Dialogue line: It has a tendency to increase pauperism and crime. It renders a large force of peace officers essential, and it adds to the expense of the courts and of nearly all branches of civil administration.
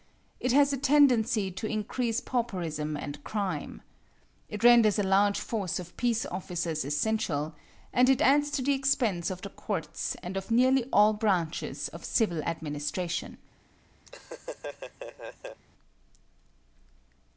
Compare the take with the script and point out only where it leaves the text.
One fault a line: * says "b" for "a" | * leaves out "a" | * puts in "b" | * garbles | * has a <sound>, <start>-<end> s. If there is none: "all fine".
* has a laugh, 14.1-15.6 s